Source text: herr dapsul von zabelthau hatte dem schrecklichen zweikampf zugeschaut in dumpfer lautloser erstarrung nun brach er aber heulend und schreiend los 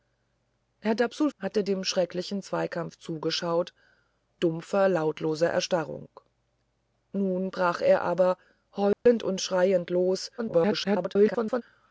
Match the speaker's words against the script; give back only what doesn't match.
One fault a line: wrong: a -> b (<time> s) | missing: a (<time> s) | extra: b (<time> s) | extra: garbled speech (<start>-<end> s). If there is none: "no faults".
missing: von zabelthau (1.3 s)
missing: in (3.7 s)
extra: garbled speech (10.4-11.6 s)